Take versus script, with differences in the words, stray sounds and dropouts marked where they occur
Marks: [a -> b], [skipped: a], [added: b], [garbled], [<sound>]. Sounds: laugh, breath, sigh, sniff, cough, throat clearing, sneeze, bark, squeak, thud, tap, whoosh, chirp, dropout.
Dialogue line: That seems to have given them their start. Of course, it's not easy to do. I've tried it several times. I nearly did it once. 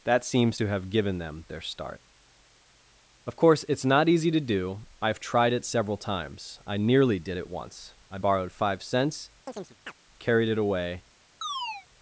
That seems to have given them their start. Of course, it's not easy to do. I've tried it several times. I nearly did it once. [added: I borrowed five cents carried it away] [chirp] [chirp]